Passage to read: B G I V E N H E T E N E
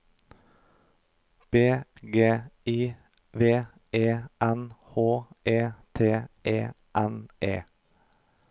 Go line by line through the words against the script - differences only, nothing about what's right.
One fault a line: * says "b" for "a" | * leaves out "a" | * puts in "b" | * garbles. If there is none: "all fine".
all fine